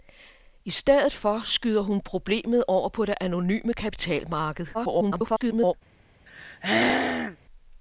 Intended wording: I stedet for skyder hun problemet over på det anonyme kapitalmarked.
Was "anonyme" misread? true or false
false